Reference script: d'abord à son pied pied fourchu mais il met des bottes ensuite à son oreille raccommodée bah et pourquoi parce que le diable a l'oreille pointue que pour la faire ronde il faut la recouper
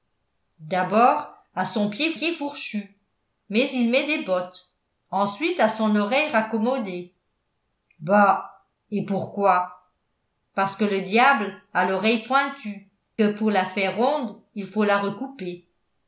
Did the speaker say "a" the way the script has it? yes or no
yes